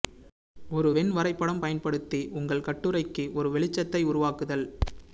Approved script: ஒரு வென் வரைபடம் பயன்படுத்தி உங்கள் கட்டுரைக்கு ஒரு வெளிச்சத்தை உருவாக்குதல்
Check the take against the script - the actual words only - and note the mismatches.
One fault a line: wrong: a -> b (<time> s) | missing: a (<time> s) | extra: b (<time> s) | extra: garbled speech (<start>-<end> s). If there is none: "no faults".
no faults